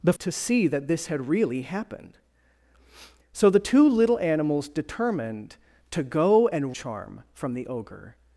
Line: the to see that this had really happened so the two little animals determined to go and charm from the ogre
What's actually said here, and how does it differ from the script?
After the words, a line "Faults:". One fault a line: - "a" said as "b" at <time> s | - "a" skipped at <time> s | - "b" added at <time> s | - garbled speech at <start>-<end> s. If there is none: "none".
the to see that this had really happened so the two little animals determined to go and charm from the ogre
Faults:
none